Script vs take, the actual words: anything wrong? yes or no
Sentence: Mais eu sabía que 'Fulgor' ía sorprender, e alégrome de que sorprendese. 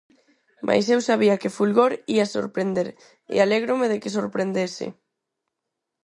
no